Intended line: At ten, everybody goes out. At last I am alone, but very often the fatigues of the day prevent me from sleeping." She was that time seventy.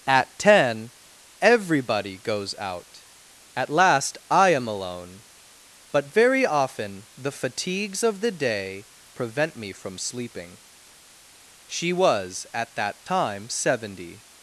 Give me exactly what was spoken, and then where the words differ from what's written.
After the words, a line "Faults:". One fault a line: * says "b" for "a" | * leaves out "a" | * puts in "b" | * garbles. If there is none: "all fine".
At ten, everybody goes out. At last I am alone, but very often the fatigues of the day prevent me from sleeping." She was at that time seventy.
Faults:
* puts in "at"